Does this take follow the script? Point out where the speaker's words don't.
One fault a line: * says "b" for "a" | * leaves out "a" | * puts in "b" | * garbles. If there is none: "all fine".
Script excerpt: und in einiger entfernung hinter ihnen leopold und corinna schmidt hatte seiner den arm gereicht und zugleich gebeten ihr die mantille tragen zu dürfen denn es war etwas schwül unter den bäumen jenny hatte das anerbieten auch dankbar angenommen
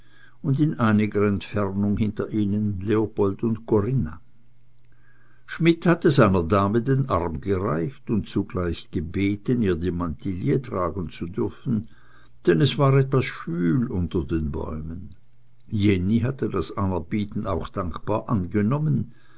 * puts in "dame"